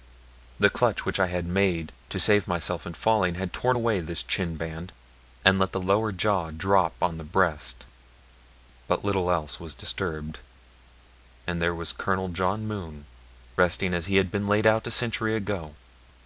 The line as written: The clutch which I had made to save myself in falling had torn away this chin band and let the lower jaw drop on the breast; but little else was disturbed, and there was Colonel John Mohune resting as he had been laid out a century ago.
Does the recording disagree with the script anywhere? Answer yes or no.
no